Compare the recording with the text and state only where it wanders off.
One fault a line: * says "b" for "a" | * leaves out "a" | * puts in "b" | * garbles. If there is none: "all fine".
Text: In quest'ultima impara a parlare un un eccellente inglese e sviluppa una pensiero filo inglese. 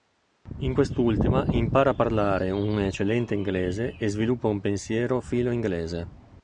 * leaves out "un"
* says "un" for "una"